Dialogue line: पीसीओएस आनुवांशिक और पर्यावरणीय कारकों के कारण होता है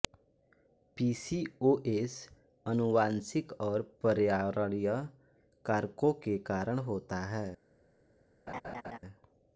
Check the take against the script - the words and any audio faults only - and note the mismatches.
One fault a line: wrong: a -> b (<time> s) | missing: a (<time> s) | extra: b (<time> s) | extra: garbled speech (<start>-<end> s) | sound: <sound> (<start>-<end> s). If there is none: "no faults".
sound: laugh (8.5-9.0 s)